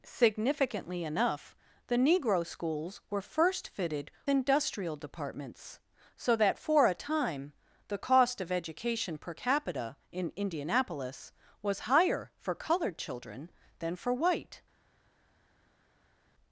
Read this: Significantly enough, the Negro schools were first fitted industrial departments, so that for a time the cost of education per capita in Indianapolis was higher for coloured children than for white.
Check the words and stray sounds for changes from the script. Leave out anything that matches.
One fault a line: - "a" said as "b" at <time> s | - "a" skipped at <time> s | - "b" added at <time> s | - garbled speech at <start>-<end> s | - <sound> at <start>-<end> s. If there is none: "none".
none